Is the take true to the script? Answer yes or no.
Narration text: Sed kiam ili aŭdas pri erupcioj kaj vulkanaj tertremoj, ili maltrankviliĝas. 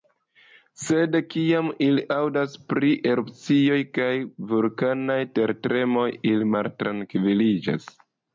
yes